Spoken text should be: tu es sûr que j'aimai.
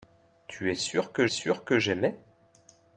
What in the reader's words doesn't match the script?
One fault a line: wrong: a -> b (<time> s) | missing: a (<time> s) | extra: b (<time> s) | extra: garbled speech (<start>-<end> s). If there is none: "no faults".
extra: sûr que (1.3 s)